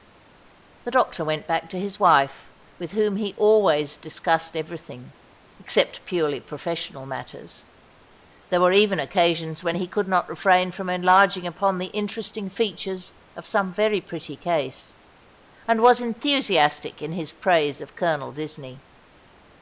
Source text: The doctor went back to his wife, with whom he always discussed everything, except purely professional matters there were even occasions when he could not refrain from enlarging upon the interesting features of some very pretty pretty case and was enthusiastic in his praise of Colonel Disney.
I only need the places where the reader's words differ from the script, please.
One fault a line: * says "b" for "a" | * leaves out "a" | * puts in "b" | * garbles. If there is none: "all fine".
* leaves out "pretty"